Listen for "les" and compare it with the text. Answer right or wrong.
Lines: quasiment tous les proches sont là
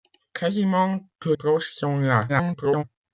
wrong